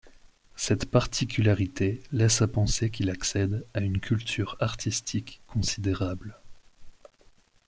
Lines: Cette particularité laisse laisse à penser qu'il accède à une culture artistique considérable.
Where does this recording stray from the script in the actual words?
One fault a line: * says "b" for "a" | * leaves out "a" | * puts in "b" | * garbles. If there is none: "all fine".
* leaves out "laisse"